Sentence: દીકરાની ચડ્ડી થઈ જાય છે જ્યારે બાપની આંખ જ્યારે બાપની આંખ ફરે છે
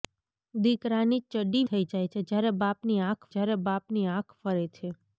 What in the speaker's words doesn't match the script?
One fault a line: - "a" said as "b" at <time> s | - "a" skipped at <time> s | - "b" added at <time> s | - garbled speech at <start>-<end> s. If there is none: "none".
none